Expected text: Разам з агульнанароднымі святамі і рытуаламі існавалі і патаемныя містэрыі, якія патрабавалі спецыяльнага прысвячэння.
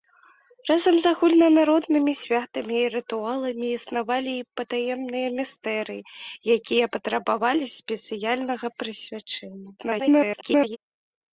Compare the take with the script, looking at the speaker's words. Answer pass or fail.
fail